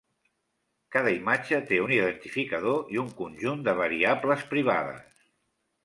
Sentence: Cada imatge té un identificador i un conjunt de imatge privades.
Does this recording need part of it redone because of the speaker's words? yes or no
yes